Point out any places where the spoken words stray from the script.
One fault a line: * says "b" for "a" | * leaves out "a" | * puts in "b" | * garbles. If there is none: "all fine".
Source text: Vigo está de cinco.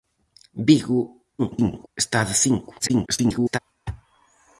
* garbles
* garbles